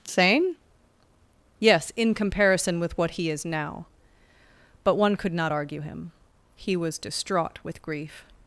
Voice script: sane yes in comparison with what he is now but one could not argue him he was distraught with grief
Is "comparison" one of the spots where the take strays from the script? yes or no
no